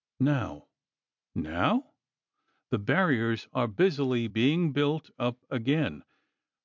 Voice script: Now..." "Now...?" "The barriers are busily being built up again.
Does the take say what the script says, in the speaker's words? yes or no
yes